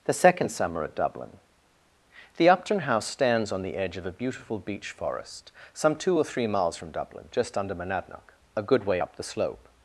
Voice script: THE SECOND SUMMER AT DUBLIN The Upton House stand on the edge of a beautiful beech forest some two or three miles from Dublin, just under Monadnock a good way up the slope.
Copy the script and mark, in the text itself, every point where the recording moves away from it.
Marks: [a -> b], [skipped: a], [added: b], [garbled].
THE SECOND SUMMER AT DUBLIN The Upton House [stand -> stands] on the edge of a beautiful beech forest some two or three miles from Dublin, just under Monadnock a good way up the slope.